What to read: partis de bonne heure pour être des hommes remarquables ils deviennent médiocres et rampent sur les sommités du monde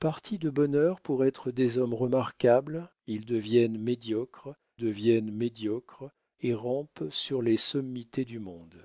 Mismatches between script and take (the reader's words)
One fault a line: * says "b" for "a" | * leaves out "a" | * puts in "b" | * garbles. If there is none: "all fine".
* puts in "deviennent médiocres"